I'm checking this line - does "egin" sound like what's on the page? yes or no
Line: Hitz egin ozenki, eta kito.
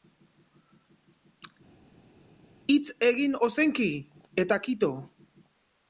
yes